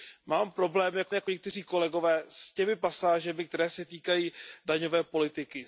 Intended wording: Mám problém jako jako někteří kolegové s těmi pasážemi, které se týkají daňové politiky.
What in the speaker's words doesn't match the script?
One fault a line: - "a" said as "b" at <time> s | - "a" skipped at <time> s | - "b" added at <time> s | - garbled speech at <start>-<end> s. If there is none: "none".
none